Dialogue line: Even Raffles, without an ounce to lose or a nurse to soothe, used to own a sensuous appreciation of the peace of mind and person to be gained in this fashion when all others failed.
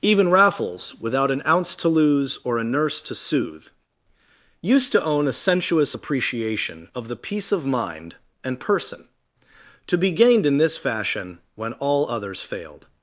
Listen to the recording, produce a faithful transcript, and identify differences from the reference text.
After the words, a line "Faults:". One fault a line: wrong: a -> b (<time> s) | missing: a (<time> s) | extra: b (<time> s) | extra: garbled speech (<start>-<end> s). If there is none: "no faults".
Even Raffles, without an ounce to lose or a nurse to soothe, used to own a sensuous appreciation of the peace of mind and person to be gained in this fashion when all others failed.
Faults:
no faults